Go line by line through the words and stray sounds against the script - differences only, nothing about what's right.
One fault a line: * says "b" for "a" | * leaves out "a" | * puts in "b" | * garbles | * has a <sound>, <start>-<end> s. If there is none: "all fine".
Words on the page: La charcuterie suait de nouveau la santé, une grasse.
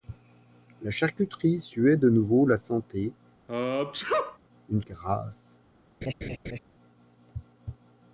* has a sneeze, 3.5-4.4 s
* has a laugh, 6.0-6.6 s